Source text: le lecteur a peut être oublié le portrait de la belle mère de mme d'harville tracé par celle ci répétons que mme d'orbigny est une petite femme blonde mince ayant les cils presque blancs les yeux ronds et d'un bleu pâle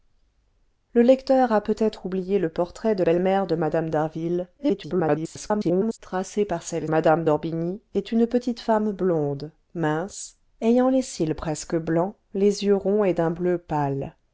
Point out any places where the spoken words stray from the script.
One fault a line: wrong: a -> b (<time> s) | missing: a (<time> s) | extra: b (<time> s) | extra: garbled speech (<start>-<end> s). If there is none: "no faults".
missing: la (3.0 s)
extra: garbled speech (4.6-6.0 s)
missing: ci répétons que (6.9 s)